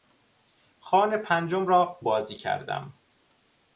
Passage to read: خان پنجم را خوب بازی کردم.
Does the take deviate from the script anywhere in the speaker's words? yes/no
yes